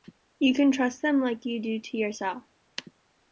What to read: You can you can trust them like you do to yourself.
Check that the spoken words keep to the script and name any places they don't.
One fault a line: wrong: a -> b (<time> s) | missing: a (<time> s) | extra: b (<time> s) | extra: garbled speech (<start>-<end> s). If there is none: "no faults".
missing: you can (0.7 s)